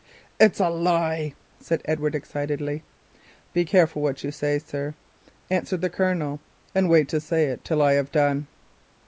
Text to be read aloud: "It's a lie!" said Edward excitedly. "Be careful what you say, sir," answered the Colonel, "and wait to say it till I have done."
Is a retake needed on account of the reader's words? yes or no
no